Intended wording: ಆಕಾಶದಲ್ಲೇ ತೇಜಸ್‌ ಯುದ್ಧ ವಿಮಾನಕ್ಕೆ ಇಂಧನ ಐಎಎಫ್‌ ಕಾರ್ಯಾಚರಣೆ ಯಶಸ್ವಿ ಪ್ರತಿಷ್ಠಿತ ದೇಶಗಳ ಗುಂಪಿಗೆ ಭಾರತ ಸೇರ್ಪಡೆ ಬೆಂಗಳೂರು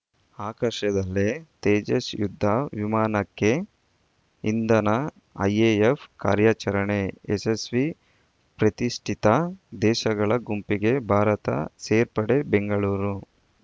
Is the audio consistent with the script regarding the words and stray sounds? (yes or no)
yes